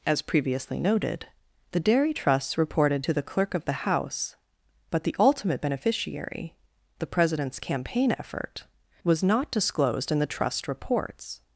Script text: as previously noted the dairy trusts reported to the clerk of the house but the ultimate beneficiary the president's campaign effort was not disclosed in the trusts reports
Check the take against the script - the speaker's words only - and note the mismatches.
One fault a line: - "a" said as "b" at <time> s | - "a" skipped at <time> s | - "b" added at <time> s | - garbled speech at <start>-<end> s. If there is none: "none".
- "trusts" said as "trust" at 10.3 s